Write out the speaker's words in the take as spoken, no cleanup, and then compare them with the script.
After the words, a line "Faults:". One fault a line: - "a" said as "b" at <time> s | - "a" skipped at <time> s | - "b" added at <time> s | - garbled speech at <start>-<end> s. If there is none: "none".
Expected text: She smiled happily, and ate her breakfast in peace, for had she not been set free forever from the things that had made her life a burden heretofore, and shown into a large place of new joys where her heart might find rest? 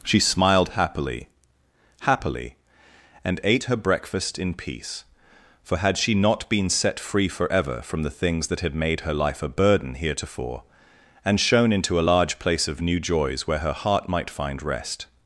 She smiled happily happily, and ate her breakfast in peace, for had she not been set free forever from the things that had made her life a burden heretofore, and shown into a large place of new joys where her heart might find rest?
Faults:
- "happily" added at 2.0 s